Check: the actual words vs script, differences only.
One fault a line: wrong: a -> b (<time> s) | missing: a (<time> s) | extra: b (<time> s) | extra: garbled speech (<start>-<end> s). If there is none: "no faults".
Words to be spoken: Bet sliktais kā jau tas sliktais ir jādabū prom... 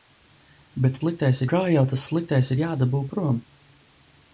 no faults